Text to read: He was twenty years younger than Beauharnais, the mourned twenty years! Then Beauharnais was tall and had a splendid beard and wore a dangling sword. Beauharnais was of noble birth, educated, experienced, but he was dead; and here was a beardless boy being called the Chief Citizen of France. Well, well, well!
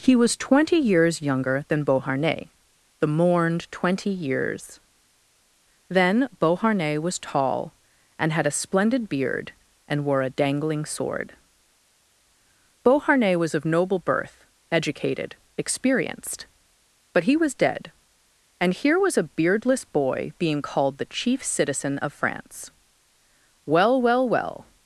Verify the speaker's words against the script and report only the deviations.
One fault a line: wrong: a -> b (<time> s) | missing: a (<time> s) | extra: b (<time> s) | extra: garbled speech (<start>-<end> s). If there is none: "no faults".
no faults